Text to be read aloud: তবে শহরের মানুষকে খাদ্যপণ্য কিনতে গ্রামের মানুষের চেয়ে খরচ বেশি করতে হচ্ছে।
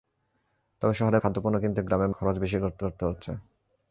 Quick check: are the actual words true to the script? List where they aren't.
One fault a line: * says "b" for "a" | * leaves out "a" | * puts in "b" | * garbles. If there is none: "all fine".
* leaves out "মানুষকে"
* leaves out "মানুষের চেয়ে"
* puts in "করতে"